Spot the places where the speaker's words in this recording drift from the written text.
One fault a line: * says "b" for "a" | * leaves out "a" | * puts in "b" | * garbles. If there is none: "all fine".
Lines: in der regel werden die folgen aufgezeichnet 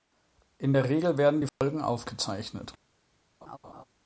all fine